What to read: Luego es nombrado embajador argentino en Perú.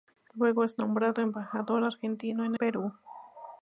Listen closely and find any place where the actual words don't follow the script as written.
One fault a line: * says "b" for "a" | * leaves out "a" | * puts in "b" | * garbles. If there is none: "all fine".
all fine